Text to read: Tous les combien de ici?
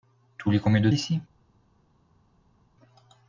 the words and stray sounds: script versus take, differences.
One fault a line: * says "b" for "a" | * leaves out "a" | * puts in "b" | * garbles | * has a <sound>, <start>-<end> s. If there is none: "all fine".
all fine